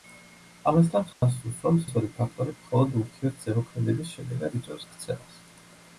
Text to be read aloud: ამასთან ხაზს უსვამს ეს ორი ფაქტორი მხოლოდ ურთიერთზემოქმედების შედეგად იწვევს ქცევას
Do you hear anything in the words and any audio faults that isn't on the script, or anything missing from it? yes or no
yes